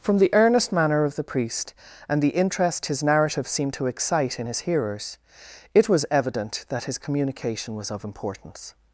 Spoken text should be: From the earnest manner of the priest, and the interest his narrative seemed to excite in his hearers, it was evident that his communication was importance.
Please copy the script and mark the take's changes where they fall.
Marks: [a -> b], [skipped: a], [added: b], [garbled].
From the earnest manner of the priest, and the interest his narrative seemed to excite in his hearers, it was evident that his communication was [added: of] importance.